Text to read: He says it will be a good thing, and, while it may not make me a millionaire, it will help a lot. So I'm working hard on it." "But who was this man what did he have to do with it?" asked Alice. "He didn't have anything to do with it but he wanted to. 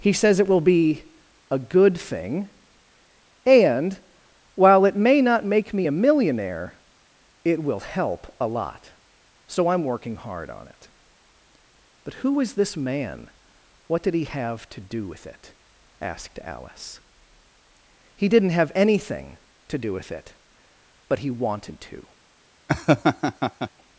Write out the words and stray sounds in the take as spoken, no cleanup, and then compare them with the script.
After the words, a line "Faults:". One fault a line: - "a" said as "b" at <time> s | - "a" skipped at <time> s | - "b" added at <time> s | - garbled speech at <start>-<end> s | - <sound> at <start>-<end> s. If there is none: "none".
He says it will be a good thing, and, while it may not make me a millionaire, it will help a lot. So I'm working hard on it." "But who is this man what did he have to do with it?" asked Alice. "He didn't have anything to do with it but he wanted to.
Faults:
- "was" said as "is" at 12.4 s
- laugh at 22.7-23.7 s